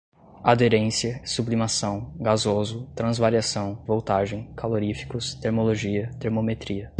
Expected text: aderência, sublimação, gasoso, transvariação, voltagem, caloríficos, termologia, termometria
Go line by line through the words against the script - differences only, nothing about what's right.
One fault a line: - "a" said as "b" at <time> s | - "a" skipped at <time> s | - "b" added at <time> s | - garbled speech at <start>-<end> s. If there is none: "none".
none